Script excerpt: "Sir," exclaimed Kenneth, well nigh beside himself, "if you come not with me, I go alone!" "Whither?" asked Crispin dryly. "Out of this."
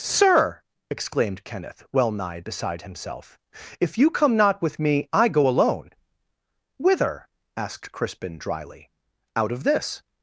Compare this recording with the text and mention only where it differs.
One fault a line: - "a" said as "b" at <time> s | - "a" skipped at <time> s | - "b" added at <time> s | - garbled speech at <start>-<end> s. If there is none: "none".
none